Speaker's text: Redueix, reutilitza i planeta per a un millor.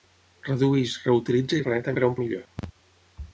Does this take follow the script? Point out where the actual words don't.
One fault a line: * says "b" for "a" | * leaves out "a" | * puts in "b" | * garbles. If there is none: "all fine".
all fine